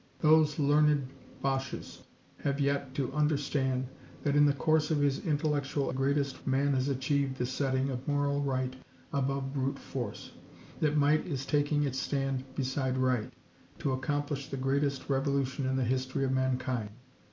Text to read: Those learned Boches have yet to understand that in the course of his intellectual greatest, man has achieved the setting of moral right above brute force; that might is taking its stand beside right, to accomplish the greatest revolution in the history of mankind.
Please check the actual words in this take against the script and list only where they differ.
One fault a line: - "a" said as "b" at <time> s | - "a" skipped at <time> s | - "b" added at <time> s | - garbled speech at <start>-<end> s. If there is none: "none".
none